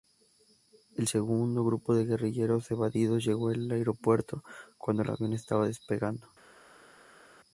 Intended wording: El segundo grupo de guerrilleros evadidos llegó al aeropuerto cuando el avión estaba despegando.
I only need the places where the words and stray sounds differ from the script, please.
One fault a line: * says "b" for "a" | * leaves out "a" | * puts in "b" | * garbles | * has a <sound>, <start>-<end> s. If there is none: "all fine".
all fine